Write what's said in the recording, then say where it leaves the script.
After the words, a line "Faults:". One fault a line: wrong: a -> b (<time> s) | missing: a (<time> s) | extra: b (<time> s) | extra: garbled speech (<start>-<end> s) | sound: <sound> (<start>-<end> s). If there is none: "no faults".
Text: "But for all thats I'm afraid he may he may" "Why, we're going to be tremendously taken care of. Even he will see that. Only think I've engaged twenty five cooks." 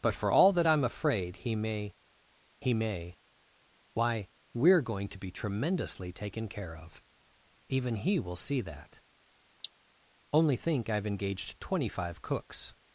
"But for all that I'm afraid he may he may" "Why, we're going to be tremendously taken care of. Even he will see that. Only think I've engaged twenty five cooks."
Faults:
wrong: thats -> that (0.5 s)
sound: cough (9.6-9.7 s)